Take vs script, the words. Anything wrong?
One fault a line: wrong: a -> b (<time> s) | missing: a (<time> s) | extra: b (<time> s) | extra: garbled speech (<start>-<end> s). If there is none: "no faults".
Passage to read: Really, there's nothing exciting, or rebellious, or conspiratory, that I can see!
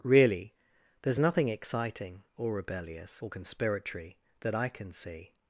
no faults